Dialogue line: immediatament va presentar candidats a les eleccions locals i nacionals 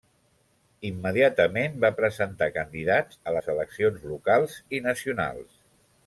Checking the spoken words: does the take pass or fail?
pass